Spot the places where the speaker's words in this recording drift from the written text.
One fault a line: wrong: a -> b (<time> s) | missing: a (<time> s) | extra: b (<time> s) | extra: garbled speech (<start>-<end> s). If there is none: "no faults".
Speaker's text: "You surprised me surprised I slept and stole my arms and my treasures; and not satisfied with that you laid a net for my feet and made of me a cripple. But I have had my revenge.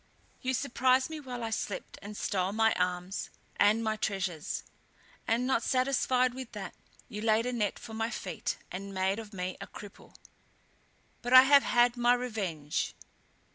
wrong: surprised -> while (1.2 s)